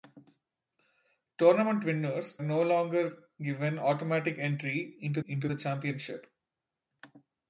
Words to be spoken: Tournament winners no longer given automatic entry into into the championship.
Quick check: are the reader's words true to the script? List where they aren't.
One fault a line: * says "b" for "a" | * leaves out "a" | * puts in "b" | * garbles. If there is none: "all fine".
all fine